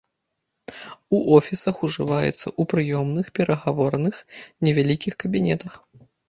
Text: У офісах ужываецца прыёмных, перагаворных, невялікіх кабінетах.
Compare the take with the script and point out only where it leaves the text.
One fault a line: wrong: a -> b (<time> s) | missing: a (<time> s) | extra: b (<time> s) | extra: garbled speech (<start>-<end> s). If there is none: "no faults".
extra: ў (2.3 s)